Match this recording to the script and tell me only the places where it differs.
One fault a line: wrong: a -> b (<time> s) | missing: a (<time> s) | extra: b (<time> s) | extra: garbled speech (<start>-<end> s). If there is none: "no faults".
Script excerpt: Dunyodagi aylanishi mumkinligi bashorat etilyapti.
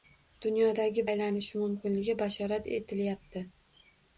no faults